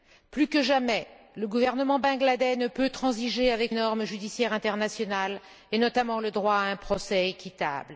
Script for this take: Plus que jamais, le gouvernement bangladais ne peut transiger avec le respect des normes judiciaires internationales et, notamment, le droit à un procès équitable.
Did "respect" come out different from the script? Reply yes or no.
yes